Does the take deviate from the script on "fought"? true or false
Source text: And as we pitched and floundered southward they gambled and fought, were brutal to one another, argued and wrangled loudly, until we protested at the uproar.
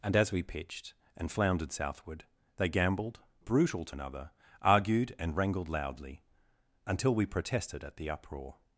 true